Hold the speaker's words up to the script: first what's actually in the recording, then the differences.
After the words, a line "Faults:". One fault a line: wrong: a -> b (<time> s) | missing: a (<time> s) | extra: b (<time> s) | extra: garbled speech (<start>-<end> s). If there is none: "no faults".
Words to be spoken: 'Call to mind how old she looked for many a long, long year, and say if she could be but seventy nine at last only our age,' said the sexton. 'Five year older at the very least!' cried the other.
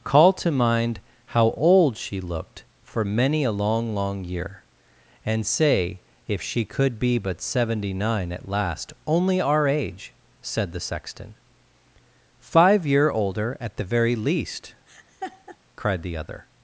'Call to mind how old she looked for many a long, long year, and say if she could be but seventy nine at last only our age,' said the sexton. 'Five year older at the very least!' cried the other.
Faults:
no faults